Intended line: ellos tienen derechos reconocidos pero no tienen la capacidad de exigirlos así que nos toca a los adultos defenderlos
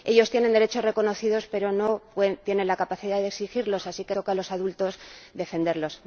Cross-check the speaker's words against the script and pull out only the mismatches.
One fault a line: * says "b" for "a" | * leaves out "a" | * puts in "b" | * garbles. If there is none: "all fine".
* leaves out "nos"